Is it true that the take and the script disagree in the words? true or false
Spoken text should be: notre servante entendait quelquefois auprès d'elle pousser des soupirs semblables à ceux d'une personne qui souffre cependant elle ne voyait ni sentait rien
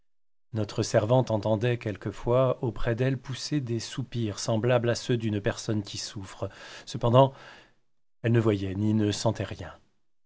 true